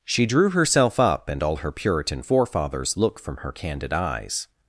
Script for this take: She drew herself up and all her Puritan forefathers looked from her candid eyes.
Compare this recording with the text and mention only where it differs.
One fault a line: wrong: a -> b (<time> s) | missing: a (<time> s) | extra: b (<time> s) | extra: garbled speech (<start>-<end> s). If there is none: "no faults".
wrong: looked -> look (3.0 s)